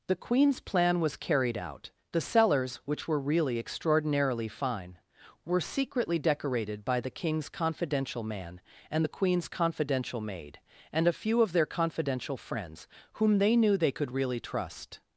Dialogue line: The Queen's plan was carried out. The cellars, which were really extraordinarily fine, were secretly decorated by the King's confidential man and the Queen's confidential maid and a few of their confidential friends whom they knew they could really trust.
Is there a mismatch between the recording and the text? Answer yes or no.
no